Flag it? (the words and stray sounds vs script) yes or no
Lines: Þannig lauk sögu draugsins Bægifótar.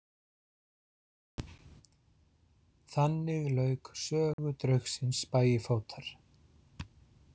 yes